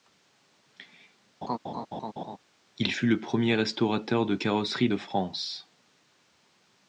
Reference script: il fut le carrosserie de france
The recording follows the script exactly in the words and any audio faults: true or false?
false